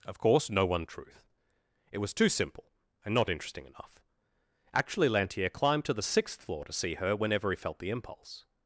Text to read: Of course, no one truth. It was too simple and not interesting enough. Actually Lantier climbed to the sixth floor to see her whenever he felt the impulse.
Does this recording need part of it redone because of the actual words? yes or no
no